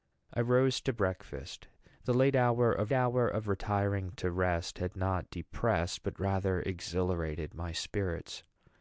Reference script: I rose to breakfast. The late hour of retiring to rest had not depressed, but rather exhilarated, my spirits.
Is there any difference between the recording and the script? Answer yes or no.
yes